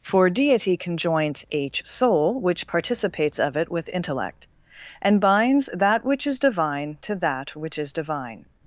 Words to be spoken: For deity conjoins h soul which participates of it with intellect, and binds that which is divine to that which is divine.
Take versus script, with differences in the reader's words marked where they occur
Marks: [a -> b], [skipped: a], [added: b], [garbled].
For deity conjoins h soul which participates of it with intellect, and binds that which is divine to that which is divine.